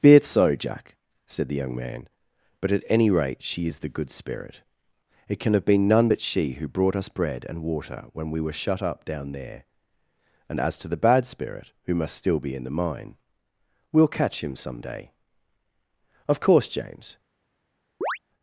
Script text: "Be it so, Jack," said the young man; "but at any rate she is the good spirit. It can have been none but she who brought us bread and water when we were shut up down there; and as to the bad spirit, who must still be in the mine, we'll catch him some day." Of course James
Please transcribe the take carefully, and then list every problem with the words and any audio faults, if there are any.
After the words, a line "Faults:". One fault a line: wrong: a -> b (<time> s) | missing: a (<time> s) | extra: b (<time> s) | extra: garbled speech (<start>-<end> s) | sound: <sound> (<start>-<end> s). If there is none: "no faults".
"Be it so, Jack," said the young man; "but at any rate she is the good spirit. It can have been none but she who brought us bread and water when we were shut up down there; and as to the bad spirit, who must still be in the mine, we'll catch him some day." Of course James
Faults:
sound: chirp (18.0-18.2 s)